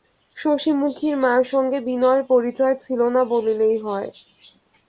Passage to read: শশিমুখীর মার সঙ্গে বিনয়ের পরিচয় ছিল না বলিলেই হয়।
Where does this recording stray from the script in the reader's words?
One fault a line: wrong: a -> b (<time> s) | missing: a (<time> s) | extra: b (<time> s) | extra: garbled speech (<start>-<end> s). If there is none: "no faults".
no faults